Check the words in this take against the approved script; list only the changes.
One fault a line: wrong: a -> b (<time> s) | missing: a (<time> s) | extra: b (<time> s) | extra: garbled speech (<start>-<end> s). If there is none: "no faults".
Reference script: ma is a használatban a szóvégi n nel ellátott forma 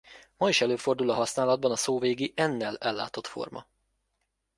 extra: előfordul (0.6 s)